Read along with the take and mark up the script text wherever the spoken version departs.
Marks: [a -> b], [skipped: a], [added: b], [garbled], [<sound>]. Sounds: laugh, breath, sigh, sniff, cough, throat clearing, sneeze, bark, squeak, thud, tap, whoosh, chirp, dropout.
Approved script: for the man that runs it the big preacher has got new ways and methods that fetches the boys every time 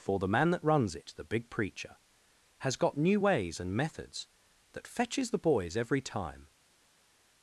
for the man that runs it the big preacher has got new ways and methods that fetches the boys every time